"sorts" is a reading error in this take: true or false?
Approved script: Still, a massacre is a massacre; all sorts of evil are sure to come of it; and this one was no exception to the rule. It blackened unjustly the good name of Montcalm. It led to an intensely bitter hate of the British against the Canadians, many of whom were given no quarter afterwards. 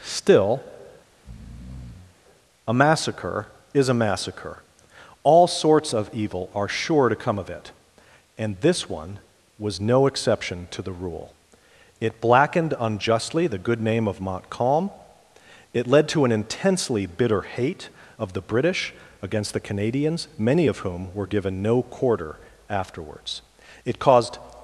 false